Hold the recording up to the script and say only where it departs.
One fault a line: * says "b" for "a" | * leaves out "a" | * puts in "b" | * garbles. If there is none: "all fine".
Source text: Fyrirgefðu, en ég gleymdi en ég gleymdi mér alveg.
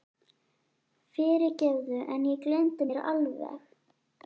* leaves out "en ég gleymdi"